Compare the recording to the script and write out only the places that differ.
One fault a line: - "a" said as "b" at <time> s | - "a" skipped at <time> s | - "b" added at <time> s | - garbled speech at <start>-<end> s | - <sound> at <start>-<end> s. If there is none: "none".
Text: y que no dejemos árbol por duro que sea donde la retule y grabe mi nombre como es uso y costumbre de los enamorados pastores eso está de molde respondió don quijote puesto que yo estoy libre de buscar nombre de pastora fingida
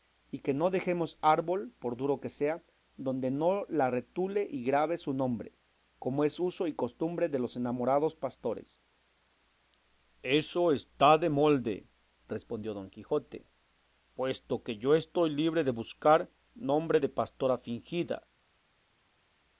- "no" added at 3.3 s
- "mi" said as "su" at 5.0 s